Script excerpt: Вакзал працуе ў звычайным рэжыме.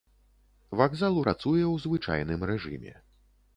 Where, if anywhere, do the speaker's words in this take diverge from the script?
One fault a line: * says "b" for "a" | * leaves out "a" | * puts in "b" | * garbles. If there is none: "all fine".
all fine